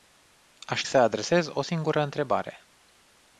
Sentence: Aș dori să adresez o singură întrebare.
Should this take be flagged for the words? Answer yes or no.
yes